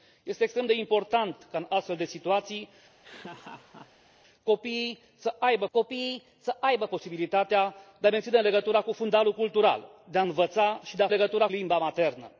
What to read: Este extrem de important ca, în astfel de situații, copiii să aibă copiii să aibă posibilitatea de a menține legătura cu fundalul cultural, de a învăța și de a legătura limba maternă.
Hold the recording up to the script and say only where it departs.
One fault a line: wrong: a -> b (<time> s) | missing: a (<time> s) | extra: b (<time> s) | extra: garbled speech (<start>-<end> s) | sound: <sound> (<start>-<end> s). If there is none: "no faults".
sound: laugh (3.0-4.2 s)